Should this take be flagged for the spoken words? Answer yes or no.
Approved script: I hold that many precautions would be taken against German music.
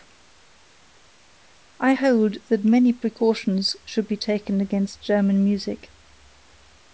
yes